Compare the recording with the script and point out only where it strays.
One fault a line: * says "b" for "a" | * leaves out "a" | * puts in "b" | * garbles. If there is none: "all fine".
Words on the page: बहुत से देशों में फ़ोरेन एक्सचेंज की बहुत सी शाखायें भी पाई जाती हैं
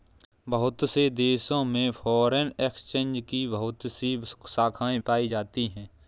* leaves out "भी"